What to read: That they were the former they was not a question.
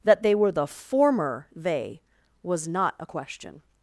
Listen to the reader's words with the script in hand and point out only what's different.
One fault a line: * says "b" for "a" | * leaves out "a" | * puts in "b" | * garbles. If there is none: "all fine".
all fine